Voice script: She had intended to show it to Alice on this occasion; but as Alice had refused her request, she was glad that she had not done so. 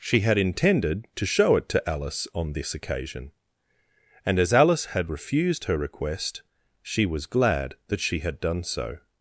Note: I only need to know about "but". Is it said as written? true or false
false